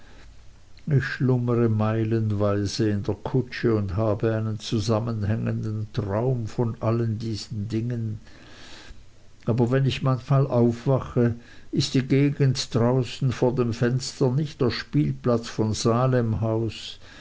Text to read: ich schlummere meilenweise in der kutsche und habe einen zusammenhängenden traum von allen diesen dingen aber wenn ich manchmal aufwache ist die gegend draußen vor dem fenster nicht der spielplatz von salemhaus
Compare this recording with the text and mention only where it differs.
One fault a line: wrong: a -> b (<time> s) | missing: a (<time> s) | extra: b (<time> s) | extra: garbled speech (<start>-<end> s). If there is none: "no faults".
no faults